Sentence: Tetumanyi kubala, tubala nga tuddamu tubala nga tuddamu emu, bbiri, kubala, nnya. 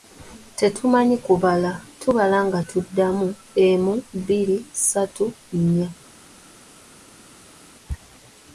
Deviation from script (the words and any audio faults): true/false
true